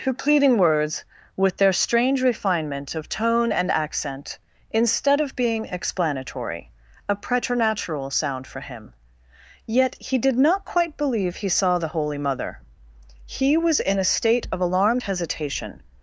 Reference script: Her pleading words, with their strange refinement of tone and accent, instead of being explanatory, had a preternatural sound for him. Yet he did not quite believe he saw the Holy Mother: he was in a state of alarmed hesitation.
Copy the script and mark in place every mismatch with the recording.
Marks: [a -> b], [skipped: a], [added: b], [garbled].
Her pleading words, with their strange refinement of tone and accent, instead of being explanatory, [skipped: had] a preternatural sound for him. Yet he did not quite believe he saw the Holy Mother: he was in a state of alarmed hesitation.